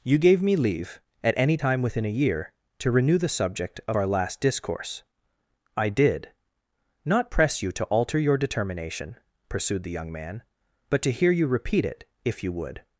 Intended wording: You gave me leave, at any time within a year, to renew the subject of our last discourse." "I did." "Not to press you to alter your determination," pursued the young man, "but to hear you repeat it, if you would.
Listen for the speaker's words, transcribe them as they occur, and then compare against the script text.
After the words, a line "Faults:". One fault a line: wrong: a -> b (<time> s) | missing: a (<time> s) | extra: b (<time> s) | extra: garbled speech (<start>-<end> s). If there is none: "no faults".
You gave me leave, at any time within a year, to renew the subject of our last discourse." "I did." "Not press you to alter your determination," pursued the young man, "but to hear you repeat it, if you would.
Faults:
missing: to (7.3 s)